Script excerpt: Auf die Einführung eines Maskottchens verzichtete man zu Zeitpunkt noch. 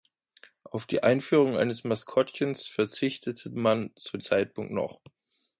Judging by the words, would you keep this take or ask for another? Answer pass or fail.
pass